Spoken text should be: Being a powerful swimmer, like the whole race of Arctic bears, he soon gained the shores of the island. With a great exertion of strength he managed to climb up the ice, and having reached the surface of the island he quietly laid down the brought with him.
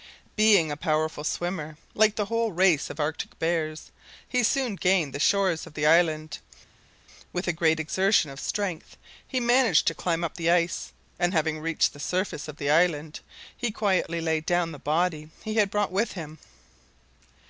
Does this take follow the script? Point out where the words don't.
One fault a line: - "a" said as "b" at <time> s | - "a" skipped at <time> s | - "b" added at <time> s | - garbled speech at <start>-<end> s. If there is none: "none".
- "body he had" added at 14.8 s